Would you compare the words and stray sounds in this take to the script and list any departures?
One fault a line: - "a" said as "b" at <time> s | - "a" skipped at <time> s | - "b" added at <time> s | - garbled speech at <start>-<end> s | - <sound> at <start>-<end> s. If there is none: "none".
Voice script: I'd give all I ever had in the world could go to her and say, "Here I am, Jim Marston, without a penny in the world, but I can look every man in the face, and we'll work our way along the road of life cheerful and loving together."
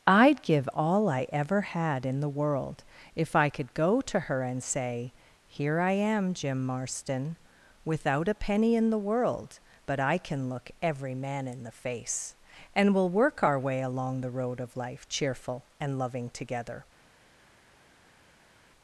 - "if I" added at 3.1 s